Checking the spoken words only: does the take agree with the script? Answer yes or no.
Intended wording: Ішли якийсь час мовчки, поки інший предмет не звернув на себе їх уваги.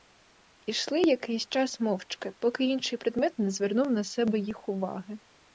yes